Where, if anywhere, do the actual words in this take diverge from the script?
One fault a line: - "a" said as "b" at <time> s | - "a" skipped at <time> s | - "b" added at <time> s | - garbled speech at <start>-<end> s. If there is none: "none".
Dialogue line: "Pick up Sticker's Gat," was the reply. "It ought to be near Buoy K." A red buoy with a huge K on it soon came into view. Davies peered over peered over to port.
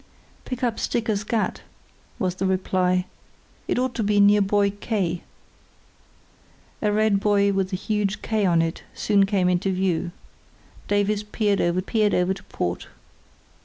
none